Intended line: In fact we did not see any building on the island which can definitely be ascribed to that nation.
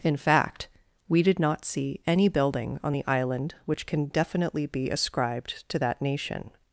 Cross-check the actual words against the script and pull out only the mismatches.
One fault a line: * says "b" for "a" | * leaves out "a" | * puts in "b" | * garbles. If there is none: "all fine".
all fine